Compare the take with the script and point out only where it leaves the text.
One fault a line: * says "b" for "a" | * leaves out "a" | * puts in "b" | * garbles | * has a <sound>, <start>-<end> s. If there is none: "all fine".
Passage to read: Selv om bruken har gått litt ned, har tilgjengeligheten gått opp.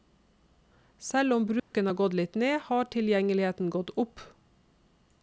* has a dropout, 1.6-1.7 s